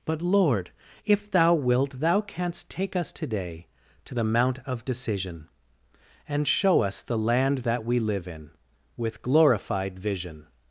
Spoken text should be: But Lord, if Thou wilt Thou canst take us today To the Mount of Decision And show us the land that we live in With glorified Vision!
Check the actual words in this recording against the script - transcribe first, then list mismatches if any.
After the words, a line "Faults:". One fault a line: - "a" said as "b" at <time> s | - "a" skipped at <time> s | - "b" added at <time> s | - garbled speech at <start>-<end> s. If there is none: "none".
But Lord, if Thou wilt Thou canst take us today To the Mount of Decision And show us the land that we live in With glorified Vision!
Faults:
none